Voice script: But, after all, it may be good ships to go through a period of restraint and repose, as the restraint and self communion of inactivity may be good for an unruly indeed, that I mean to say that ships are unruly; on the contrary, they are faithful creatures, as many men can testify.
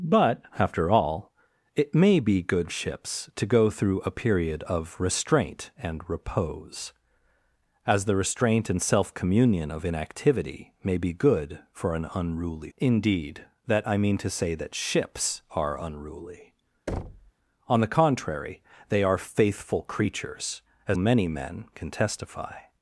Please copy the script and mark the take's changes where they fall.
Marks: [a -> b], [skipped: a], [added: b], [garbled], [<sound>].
But, after all, it may be good ships to go through a period of restraint and repose, as the restraint and self communion of inactivity may be good for an unruly indeed, that I mean to say that ships are unruly; [thud] on the contrary, they are faithful creatures, as many men can testify.